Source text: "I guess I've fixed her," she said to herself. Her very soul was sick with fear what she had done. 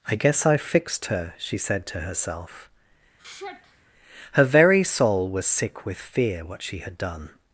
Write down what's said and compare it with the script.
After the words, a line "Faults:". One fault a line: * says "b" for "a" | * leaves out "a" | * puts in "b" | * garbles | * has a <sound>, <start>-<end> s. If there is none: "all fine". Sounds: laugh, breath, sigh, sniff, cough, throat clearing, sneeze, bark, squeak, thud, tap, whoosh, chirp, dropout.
"I guess I've fixed her," she said to herself. Her very soul was sick with fear what she had done.
Faults:
* has a sigh, 3.2-3.9 s